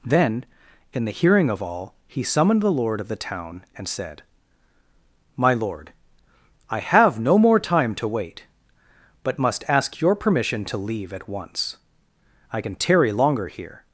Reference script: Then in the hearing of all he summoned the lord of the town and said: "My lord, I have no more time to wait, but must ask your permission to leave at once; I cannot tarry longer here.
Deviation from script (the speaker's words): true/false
true